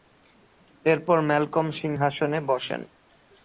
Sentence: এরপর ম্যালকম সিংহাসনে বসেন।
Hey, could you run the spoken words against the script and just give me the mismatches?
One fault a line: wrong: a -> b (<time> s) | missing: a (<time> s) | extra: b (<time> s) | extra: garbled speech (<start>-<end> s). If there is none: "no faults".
no faults